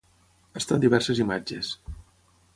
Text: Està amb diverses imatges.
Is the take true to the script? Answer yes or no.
yes